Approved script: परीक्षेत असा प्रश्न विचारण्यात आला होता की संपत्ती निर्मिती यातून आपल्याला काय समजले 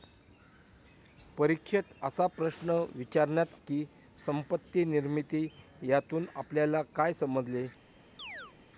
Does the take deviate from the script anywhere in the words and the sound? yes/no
yes